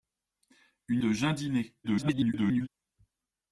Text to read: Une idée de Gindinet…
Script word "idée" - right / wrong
wrong